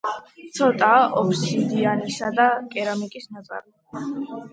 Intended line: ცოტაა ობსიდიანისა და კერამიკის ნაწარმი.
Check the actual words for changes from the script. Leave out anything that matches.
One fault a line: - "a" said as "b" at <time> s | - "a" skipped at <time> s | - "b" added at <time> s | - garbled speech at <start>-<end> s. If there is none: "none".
none